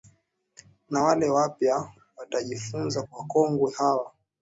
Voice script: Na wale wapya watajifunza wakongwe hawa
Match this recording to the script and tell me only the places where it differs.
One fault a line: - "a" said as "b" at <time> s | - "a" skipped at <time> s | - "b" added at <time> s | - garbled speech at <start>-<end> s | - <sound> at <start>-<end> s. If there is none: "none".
none